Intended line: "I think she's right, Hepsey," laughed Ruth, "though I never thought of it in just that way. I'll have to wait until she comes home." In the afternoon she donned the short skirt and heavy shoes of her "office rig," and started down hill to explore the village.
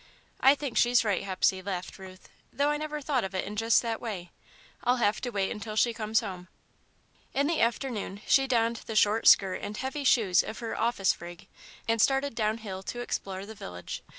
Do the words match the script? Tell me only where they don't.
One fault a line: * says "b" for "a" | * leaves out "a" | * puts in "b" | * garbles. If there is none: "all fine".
all fine